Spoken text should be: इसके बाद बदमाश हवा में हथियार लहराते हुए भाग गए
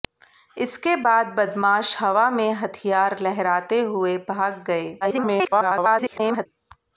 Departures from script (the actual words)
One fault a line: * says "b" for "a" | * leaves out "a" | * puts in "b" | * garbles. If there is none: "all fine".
* garbles